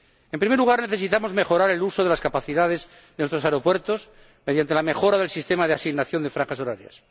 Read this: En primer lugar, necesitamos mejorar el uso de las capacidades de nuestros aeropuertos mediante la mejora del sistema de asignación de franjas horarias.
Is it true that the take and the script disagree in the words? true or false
false